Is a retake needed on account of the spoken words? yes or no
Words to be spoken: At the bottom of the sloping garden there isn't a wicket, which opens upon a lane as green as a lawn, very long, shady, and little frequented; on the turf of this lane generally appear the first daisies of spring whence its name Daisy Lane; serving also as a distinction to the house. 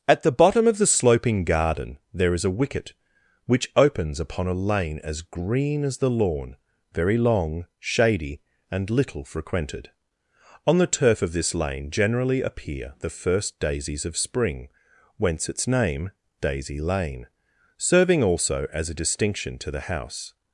yes